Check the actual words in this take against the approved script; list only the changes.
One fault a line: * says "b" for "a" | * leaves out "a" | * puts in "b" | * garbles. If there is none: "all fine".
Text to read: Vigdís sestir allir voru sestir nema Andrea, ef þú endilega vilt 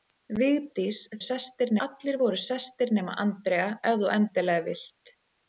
all fine